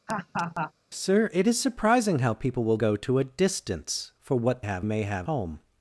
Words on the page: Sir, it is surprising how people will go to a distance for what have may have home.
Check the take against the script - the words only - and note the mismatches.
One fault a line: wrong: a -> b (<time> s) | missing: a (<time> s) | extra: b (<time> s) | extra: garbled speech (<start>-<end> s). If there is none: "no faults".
no faults